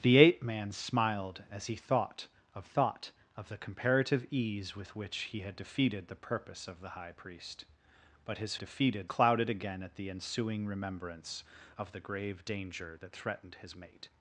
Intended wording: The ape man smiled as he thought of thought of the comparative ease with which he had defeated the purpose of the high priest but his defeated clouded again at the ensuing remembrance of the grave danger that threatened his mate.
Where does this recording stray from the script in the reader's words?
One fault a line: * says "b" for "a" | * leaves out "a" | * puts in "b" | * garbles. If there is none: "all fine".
all fine